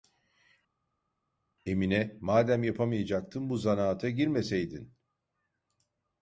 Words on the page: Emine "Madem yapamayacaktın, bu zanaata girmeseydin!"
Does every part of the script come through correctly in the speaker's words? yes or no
yes